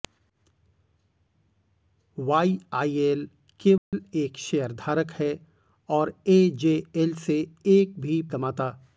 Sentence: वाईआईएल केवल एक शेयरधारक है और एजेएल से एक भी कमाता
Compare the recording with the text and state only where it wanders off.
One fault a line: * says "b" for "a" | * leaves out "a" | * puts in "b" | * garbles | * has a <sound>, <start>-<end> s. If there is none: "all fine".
* has a dropout, 3.8-3.9 s